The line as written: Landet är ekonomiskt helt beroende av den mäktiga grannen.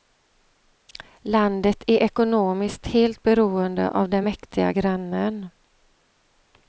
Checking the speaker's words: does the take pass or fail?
pass